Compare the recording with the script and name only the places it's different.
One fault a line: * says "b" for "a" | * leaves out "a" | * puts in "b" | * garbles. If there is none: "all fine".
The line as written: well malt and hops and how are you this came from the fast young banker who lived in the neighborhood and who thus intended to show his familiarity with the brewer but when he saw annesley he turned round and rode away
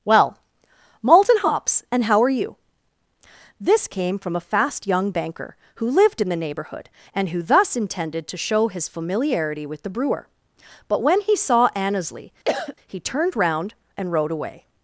* says "a" for "the"